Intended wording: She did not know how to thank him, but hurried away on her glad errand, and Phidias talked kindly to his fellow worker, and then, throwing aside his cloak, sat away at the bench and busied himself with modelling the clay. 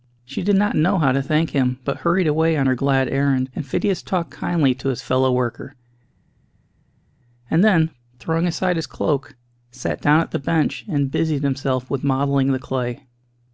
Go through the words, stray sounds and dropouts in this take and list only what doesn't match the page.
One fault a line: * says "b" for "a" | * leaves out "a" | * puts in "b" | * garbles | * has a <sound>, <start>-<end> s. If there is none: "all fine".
* says "down" for "away"